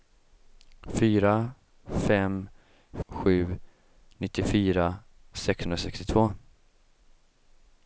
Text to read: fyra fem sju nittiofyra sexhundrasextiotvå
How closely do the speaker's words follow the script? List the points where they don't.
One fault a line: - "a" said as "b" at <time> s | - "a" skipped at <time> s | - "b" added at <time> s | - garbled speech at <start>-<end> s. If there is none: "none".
none